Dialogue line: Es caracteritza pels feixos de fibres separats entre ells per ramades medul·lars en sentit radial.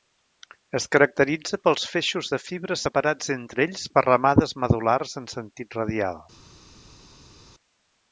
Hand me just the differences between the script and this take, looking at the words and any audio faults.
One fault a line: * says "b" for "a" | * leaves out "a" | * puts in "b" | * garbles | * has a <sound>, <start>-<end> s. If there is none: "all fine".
all fine